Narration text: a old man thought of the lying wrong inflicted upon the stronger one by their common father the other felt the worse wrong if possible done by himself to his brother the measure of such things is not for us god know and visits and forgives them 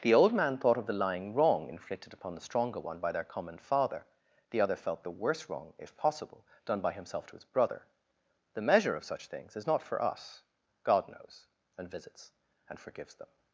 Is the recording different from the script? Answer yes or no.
yes